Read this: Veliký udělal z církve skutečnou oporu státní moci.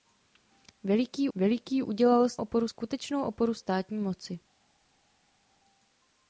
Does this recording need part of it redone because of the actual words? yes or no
yes